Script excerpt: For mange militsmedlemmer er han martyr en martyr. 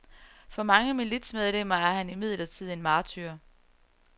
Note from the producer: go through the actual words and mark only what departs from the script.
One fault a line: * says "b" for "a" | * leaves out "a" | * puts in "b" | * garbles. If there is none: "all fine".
* says "imidlertid" for "martyr"